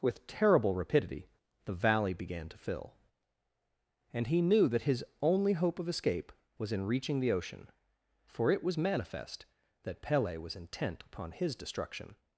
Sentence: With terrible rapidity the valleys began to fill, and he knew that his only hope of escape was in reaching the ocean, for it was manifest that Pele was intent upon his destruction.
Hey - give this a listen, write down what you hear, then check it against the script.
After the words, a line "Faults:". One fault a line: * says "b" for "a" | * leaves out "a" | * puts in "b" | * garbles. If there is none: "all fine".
With terrible rapidity the valley began to fill, and he knew that his only hope of escape was in reaching the ocean, for it was manifest that Pele was intent upon his destruction.
Faults:
* says "valley" for "valleys"